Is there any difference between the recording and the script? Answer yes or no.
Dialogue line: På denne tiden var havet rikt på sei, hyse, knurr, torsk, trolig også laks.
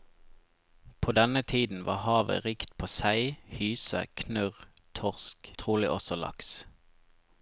no